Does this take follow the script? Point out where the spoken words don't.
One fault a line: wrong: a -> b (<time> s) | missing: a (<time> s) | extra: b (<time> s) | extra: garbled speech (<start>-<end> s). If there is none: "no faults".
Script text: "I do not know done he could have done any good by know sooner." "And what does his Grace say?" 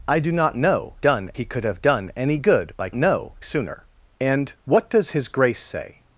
no faults